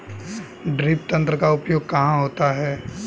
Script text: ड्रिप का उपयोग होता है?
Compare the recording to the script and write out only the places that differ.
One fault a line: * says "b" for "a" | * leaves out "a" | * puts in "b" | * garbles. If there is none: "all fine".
* puts in "तंत्र"
* puts in "कहाँ"